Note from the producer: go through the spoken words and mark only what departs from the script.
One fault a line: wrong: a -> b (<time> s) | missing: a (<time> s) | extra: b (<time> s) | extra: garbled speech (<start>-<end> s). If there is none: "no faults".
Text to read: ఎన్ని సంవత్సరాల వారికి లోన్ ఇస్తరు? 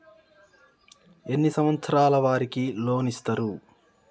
no faults